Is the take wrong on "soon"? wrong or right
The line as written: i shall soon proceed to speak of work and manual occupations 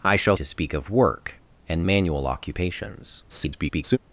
wrong